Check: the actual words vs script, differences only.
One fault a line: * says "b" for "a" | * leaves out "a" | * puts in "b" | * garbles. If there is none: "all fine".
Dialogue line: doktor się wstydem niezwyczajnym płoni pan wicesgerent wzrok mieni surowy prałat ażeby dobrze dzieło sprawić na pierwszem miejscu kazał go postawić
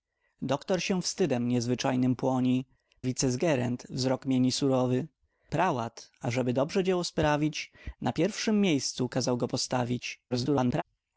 * leaves out "pan"
* garbles